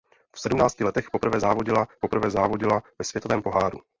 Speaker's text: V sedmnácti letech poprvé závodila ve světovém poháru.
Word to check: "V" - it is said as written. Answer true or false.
true